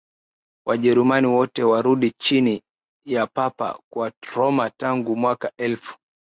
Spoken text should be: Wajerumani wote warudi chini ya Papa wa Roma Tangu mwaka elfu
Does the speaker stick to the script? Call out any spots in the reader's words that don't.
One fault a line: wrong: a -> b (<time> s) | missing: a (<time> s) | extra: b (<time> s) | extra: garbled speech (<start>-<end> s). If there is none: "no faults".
no faults